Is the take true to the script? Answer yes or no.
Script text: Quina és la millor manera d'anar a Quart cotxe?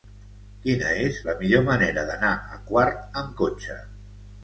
no